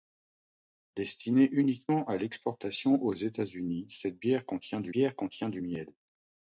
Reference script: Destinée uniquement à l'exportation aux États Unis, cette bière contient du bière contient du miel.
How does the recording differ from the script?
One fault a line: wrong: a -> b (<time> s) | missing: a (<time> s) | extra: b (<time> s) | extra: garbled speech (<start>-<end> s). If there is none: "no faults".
no faults